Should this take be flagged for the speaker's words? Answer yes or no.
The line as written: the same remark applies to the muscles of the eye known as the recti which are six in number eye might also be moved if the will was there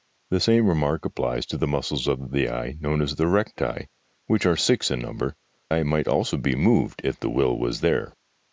no